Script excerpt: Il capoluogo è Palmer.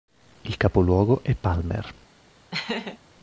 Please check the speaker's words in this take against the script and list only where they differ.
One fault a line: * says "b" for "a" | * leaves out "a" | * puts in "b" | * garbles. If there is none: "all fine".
all fine